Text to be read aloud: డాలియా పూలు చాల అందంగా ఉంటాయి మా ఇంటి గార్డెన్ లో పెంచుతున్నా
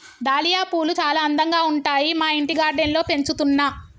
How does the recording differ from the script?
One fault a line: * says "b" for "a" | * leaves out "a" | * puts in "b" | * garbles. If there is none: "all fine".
all fine